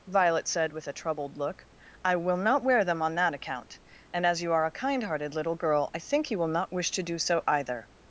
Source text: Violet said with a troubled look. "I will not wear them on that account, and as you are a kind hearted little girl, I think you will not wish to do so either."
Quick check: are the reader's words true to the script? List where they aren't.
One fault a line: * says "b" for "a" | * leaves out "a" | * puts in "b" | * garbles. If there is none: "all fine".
all fine